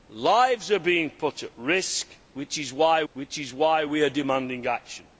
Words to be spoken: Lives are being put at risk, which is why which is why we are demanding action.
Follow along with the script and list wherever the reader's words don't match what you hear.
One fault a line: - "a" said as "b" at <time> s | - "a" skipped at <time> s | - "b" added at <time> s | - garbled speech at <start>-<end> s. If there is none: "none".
none